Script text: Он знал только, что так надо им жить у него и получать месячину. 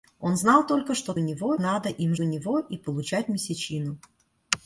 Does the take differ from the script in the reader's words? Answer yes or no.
yes